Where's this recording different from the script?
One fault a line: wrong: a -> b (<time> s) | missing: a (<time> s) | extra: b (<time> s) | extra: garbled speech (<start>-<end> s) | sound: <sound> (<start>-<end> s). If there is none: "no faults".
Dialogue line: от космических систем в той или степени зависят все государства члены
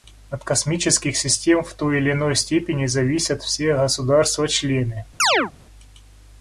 extra: иной (2.1 s)
sound: chirp (5.2-5.5 s)